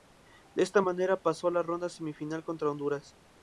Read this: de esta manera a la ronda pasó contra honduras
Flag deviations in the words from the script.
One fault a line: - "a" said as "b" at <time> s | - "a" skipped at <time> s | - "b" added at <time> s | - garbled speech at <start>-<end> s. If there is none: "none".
- "pasó" added at 1.2 s
- "pasó" said as "semifinal" at 1.9 s